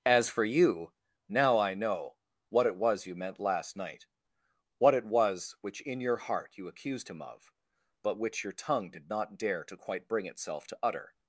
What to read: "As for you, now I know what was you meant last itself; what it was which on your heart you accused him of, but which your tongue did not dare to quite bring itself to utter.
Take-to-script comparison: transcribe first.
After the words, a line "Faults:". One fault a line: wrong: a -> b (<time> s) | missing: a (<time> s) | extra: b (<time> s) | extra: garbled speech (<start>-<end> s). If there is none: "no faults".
"As for you, now I know what it was you meant last night; what it was which in your heart you accused him of, but which your tongue did not dare to quite bring itself to utter.
Faults:
extra: it (2.6 s)
wrong: itself -> night (3.8 s)
wrong: on -> in (5.8 s)